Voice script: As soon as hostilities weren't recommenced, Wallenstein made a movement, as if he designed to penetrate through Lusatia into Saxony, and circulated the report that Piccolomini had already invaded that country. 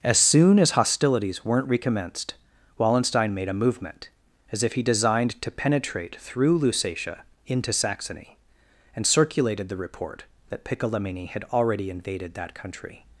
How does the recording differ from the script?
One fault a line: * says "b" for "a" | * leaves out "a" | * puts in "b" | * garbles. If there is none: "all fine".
all fine